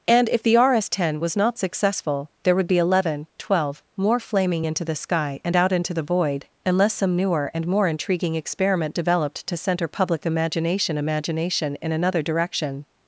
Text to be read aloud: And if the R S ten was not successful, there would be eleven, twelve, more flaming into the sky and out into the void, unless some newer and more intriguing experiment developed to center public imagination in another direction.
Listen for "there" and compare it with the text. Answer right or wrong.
right